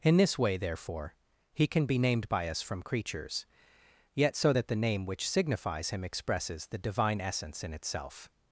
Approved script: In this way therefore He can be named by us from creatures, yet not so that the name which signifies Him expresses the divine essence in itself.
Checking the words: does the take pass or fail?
fail